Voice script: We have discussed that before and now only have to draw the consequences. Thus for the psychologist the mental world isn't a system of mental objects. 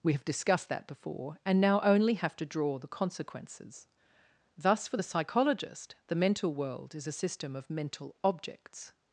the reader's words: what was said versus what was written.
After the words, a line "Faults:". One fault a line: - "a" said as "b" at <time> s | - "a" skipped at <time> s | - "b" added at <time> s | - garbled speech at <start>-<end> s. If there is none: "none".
We have discussed that before and now only have to draw the consequences. Thus for the psychologist the mental world is a system of mental objects.
Faults:
- "isn't" said as "is" at 6.9 s